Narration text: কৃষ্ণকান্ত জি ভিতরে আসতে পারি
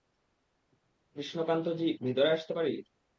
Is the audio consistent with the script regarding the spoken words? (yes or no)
yes